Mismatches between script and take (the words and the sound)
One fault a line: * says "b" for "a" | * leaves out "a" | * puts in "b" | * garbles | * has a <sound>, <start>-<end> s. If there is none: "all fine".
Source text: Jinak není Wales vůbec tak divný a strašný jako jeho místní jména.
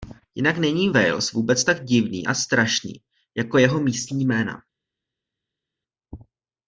all fine